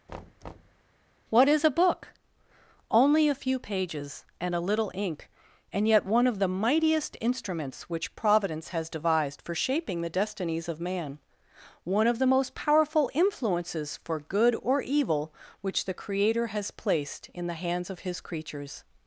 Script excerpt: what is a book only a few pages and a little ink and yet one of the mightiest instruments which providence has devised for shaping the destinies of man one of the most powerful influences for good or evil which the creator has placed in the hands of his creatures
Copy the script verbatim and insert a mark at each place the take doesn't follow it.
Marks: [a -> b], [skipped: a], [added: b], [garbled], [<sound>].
[thud] what is a book only a few pages and a little ink and yet one of the mightiest instruments which providence has devised for shaping the destinies of man one of the most powerful influences for good or evil which the creator has placed in the hands of his creatures